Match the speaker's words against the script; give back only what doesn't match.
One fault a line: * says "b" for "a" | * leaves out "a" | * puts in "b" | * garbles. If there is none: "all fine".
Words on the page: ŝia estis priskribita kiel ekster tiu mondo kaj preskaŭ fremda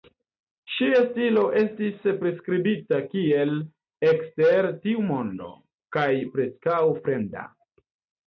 * puts in "stilo"